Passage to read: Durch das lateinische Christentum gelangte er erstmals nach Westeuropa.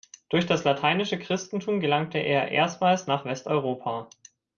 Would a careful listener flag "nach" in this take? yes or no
no